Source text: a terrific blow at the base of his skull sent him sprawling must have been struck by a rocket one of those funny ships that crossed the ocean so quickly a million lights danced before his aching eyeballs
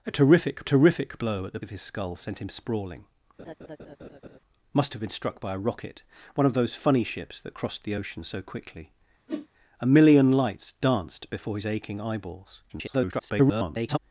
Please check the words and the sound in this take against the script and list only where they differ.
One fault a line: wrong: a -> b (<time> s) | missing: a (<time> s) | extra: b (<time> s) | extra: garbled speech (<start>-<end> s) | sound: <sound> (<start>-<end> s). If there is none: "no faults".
extra: terrific (0.6 s)
missing: base (1.6 s)
sound: laugh (3.4-4.4 s)
sound: whoosh (9.3-9.5 s)
extra: garbled speech (12.7-14.0 s)